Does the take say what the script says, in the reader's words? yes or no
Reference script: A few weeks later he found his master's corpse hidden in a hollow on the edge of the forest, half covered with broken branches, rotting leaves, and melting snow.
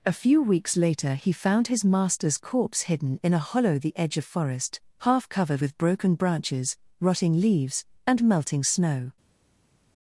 no